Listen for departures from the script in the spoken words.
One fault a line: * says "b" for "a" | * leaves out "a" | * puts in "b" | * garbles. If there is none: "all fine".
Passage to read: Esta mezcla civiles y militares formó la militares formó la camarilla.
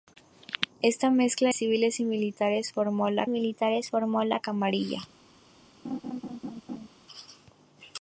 all fine